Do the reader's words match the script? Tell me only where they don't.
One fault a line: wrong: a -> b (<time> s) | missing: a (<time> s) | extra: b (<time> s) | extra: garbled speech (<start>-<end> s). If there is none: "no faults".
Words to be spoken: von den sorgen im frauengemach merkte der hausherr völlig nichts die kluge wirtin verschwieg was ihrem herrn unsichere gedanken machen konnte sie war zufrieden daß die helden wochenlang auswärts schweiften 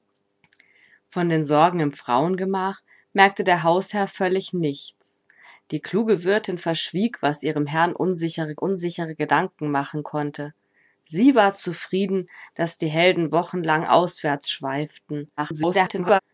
extra: unsichere (8.6 s)
extra: garbled speech (15.4-16.2 s)